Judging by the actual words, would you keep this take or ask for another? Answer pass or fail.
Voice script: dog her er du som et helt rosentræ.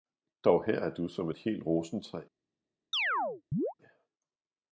pass